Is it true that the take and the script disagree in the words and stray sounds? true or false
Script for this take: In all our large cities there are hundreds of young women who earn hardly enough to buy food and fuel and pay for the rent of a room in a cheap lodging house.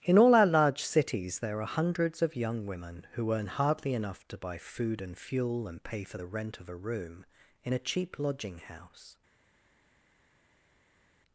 false